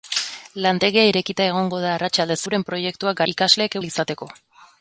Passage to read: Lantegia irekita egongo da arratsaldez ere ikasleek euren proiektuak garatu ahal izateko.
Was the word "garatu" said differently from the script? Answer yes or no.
yes